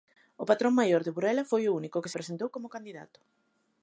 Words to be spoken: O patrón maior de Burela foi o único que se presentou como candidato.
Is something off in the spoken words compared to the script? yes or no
yes